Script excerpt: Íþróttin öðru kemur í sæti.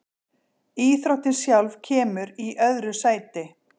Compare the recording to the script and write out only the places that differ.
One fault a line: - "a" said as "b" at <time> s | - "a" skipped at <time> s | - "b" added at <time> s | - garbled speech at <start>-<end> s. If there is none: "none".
- "öðru" said as "sjálf" at 1.4 s
- "öðru" added at 2.7 s